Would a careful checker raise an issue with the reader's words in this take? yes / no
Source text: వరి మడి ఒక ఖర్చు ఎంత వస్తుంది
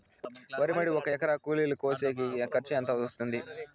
yes